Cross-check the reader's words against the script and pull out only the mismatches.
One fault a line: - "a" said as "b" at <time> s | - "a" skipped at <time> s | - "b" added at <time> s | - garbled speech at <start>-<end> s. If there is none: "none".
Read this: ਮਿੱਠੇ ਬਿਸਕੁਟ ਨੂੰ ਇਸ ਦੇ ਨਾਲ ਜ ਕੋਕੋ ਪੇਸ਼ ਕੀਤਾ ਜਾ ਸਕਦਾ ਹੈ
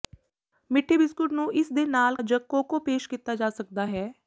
none